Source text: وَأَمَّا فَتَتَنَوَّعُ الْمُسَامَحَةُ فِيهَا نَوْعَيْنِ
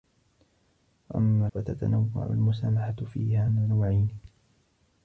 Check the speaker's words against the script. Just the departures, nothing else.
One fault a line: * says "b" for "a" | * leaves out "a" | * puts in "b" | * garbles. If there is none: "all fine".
all fine